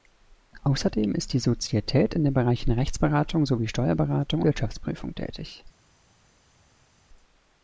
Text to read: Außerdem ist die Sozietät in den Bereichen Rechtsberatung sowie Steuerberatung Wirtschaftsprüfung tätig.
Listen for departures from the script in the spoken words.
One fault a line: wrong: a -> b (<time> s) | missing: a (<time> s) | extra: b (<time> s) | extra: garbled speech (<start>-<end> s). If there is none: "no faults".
no faults